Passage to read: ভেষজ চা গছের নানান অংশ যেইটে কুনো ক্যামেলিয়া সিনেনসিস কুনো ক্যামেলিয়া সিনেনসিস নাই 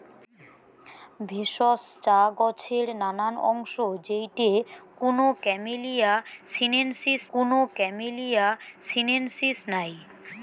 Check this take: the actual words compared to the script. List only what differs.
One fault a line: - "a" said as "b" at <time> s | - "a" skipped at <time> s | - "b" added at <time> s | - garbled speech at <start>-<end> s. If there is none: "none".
none